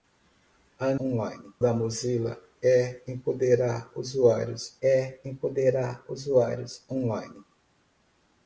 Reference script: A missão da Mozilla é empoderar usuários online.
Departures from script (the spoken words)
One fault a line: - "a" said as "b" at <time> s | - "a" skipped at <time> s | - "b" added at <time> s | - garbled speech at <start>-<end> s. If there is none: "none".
- "missão" said as "online" at 1.0 s
- "é empoderar usuários" added at 4.8 s